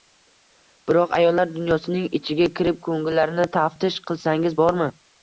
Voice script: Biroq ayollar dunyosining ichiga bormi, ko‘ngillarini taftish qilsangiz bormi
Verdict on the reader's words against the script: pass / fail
fail